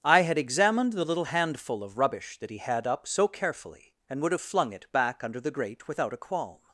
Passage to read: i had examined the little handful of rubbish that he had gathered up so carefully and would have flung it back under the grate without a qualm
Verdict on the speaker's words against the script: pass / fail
fail